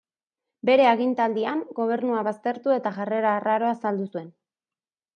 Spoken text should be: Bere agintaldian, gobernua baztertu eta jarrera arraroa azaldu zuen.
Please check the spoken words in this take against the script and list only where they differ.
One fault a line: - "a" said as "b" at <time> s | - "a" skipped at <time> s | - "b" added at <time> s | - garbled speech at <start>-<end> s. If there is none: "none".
none